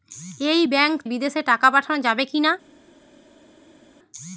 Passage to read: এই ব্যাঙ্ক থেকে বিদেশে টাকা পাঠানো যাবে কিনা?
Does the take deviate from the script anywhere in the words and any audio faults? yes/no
yes